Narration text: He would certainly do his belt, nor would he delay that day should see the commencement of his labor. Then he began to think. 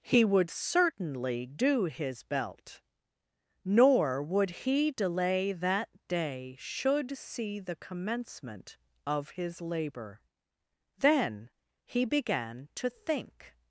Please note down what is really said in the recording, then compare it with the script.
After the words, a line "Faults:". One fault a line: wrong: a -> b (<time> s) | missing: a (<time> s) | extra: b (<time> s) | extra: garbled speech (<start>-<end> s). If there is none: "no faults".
He would certainly do his belt, nor would he delay that day should see the commencement of his labor. Then he began to think.
Faults:
no faults